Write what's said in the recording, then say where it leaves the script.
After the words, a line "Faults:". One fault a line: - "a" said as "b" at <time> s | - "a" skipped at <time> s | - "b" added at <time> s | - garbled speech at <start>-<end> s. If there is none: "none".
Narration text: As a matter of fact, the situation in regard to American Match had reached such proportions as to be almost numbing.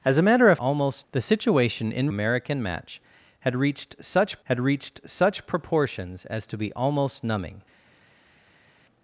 As a matter of almost, the situation in American Match had reached such had reached such proportions as to be almost numbing.
Faults:
- "fact" said as "almost" at 0.5 s
- "regard to American Match" said as "American Match had reached such" at 2.1 s